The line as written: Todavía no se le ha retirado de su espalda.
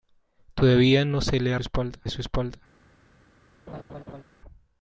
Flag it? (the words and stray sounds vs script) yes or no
yes